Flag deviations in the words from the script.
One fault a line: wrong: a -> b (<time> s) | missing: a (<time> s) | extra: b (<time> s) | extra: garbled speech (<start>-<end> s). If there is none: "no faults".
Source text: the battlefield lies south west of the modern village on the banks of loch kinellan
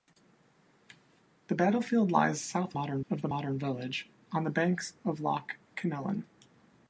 wrong: west -> modern (2.7 s)